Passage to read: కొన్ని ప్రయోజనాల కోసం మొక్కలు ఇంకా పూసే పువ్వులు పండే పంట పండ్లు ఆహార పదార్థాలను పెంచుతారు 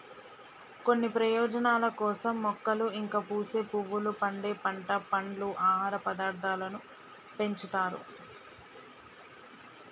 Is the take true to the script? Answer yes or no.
yes